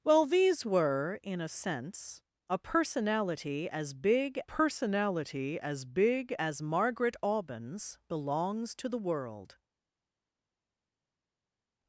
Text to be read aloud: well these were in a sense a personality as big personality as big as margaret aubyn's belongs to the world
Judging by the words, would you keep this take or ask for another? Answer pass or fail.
pass